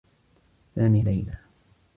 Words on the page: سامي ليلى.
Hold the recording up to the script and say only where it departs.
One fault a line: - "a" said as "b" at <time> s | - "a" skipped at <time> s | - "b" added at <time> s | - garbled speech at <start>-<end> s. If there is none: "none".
none